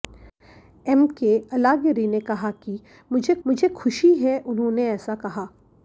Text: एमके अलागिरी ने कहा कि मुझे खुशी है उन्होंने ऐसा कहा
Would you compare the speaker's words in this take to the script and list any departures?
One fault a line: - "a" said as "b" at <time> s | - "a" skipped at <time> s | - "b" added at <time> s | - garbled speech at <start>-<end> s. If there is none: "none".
- "मुझे" added at 3.5 s